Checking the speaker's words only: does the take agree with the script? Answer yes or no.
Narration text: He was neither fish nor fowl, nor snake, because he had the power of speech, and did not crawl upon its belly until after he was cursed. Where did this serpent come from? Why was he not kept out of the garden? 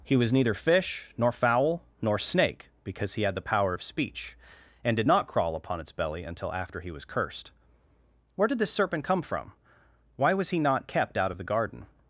yes